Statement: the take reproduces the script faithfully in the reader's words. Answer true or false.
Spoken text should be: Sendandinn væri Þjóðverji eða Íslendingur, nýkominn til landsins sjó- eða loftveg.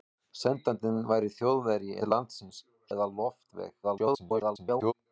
false